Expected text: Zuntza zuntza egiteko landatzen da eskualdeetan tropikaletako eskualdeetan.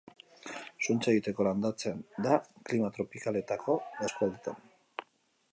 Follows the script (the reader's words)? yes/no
no